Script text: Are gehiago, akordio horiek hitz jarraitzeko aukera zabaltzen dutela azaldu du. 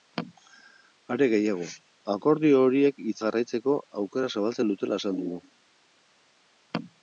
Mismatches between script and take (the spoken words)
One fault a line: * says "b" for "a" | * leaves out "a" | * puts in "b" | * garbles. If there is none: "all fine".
all fine